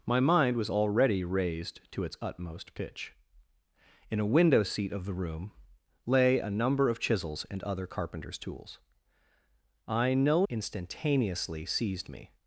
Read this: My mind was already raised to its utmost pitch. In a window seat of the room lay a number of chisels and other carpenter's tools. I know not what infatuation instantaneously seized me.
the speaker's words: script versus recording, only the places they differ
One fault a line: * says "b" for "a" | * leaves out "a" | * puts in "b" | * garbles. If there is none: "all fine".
* leaves out "not what infatuation"